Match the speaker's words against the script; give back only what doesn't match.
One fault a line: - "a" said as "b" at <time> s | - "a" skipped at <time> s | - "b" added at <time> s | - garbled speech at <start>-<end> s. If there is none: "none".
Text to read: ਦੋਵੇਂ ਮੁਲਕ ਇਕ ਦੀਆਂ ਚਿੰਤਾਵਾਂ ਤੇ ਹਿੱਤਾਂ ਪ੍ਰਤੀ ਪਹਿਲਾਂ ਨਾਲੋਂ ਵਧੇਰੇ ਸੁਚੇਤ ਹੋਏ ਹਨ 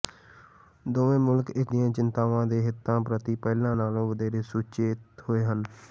none